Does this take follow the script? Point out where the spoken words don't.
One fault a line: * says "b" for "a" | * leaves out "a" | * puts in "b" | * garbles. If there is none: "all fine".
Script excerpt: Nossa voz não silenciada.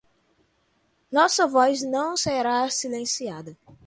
* puts in "será"